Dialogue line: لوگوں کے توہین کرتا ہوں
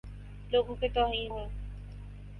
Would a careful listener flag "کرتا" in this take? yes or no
yes